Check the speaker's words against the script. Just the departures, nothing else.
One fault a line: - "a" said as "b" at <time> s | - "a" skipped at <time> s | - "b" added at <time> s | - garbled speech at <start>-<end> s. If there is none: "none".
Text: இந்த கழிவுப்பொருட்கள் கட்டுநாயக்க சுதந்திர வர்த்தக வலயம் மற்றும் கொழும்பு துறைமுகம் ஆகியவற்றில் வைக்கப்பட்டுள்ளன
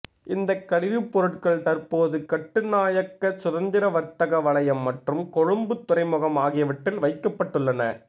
- "தற்போது" added at 1.6 s